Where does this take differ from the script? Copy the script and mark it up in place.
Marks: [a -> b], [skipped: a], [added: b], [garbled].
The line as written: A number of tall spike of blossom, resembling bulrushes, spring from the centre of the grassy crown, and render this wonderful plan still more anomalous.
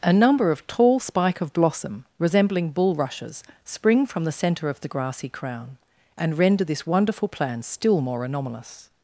A number of tall spike of blossom, resembling bulrushes, spring from the centre of the grassy crown, and render this wonderful plan still more anomalous.